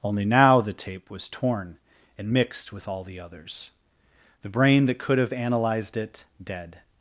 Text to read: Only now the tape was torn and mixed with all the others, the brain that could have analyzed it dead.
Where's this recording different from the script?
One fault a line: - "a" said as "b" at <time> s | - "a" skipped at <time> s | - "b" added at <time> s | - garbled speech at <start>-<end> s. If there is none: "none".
none